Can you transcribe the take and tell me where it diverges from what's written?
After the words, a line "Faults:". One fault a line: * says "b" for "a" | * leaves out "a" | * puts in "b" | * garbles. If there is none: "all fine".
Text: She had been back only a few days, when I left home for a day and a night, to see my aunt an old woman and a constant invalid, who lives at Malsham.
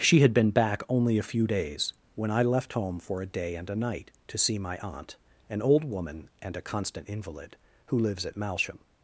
She had been back only a few days, when I left home for a day and a night, to see my aunt an old woman and a constant invalid, who lives at Malsham.
Faults:
all fine